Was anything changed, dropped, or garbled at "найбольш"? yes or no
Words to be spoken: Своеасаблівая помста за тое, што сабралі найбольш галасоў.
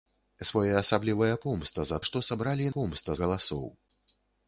yes